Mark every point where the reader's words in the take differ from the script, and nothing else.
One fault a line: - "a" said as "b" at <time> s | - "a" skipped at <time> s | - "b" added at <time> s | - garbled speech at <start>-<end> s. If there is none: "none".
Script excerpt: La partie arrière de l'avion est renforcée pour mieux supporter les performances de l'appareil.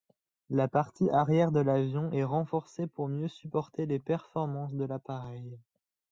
none